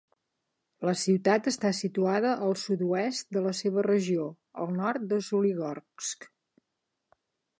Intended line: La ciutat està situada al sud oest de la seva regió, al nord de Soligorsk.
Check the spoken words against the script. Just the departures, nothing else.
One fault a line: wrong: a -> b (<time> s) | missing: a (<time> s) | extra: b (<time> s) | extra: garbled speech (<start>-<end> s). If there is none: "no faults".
no faults